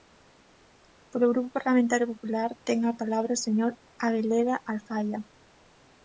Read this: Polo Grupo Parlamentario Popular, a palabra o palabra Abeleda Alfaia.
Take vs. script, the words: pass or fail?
fail